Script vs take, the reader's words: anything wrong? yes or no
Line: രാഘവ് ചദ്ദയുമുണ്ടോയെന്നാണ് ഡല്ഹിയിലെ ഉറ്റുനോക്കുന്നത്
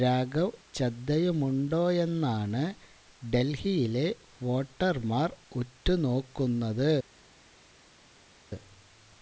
yes